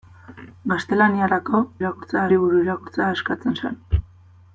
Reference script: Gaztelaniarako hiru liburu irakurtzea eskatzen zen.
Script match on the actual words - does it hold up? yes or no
no